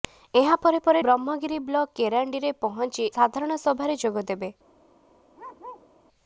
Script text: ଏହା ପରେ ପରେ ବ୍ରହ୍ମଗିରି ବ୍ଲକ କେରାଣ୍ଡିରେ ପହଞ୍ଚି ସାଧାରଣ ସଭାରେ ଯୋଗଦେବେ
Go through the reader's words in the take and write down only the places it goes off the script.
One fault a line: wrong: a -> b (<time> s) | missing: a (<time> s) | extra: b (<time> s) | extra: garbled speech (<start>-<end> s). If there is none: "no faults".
no faults